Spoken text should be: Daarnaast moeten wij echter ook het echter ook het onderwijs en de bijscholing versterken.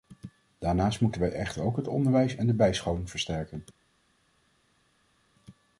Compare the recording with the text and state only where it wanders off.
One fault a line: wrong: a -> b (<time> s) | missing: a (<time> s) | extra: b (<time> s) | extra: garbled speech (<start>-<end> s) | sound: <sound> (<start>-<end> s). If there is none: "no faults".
missing: echter ook het (1.9 s)